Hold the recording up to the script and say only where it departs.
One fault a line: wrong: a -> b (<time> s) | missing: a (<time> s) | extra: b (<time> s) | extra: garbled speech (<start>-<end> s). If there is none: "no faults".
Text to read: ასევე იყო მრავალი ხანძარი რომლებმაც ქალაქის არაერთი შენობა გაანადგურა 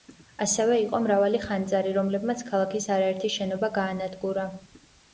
no faults